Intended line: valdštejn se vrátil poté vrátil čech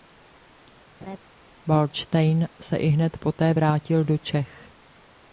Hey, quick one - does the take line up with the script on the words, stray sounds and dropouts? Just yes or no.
no